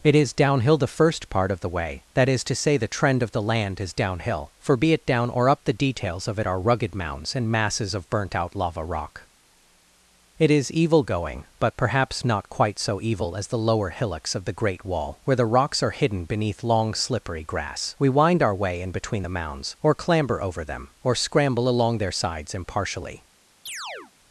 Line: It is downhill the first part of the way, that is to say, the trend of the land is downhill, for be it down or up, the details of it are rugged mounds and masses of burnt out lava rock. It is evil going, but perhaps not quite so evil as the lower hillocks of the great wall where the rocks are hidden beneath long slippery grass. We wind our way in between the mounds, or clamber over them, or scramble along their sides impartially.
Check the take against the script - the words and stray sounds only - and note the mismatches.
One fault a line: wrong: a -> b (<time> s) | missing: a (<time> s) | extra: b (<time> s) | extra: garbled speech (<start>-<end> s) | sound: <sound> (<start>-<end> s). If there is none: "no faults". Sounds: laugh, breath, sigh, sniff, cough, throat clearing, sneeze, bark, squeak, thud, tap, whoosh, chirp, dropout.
sound: chirp (23.7-24.1 s)